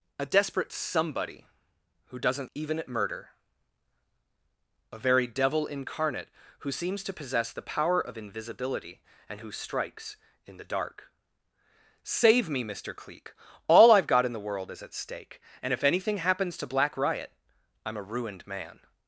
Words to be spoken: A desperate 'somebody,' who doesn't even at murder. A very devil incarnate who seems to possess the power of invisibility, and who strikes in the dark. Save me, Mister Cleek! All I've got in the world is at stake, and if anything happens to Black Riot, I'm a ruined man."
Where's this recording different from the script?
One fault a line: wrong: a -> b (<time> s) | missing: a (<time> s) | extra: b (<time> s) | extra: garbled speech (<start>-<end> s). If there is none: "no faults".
no faults